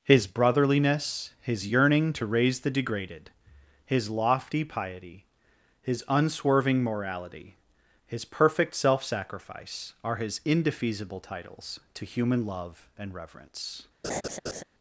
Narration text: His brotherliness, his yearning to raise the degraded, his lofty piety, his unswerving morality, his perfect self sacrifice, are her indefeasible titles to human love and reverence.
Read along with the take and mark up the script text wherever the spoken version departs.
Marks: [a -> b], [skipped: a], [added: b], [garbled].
His brotherliness, his yearning to raise the degraded, his lofty piety, his unswerving morality, his perfect self sacrifice, are [her -> his] indefeasible titles to human love and reverence.